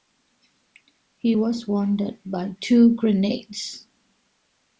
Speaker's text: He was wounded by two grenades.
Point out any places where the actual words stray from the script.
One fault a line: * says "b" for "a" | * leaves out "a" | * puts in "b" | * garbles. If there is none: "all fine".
all fine